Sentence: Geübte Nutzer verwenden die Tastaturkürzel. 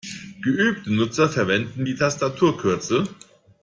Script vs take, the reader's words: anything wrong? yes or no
no